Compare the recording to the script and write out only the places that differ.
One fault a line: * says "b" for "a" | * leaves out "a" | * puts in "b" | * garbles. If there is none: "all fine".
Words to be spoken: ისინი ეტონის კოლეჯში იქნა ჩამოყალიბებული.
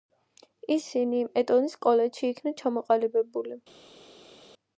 all fine